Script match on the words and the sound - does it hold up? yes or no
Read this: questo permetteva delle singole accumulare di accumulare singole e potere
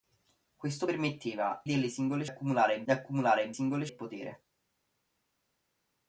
yes